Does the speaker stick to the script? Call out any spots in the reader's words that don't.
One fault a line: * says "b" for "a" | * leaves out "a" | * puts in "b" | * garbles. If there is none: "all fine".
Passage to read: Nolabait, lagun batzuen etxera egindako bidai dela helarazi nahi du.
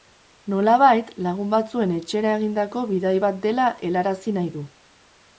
* puts in "bat"